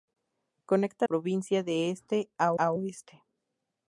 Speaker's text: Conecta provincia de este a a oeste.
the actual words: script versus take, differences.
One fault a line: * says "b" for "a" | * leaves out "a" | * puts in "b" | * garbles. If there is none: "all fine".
all fine